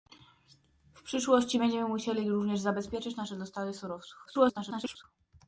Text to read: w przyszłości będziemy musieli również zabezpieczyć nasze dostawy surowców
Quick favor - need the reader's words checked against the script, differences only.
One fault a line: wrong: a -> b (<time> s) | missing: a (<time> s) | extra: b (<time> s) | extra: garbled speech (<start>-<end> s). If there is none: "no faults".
extra: garbled speech (4.3-5.0 s)